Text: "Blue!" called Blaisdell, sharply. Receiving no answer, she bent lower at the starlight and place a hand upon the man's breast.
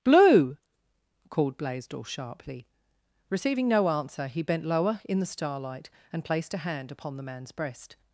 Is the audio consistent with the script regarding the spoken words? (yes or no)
no